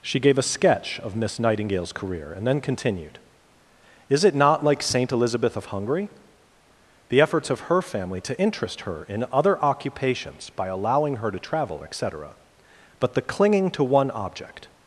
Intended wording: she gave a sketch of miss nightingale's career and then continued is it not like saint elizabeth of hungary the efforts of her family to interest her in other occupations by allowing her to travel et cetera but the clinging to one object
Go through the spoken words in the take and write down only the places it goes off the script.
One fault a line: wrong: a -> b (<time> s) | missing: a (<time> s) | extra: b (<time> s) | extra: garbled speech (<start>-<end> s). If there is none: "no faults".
no faults